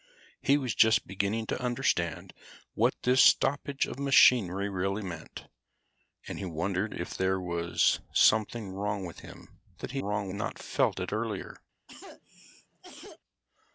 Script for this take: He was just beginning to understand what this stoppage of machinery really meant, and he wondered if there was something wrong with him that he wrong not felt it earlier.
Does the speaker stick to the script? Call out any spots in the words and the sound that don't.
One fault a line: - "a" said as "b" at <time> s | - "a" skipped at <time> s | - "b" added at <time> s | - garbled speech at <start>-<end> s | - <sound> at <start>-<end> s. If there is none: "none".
- cough at 11.9-13.2 s